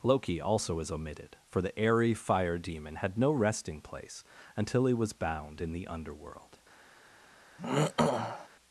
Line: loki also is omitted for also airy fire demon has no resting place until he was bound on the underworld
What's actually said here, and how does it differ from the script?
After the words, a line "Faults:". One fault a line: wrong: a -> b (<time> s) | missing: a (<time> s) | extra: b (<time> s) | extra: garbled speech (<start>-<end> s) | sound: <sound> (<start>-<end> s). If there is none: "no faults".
loki also is omitted for the airy fire demon had no resting place until he was bound in the underworld
Faults:
wrong: also -> the (1.6 s)
wrong: has -> had (3.0 s)
wrong: on -> in (5.6 s)
sound: throat clearing (7.6-8.5 s)